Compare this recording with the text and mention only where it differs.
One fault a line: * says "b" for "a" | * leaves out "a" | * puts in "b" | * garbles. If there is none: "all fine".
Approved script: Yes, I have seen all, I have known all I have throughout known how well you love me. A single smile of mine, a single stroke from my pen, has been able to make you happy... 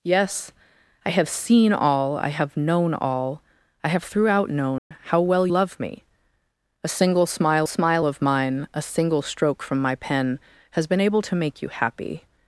* leaves out "you"
* puts in "smile"